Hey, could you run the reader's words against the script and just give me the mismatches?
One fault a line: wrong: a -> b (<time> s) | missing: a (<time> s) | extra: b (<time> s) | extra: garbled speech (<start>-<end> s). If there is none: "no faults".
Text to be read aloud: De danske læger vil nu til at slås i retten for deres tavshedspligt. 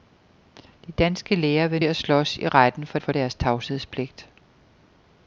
missing: nu til (1.8 s)
extra: for (3.0 s)